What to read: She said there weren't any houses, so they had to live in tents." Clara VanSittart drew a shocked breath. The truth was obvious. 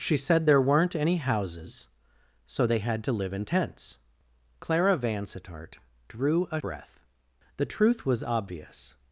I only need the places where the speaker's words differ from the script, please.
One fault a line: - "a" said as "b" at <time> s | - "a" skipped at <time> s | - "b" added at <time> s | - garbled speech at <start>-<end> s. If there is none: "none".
- "shocked" skipped at 6.6 s